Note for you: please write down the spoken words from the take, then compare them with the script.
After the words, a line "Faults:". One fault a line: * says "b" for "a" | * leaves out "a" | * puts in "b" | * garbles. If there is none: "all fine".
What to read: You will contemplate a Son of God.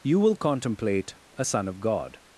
You will contemplate a Son of God.
Faults:
all fine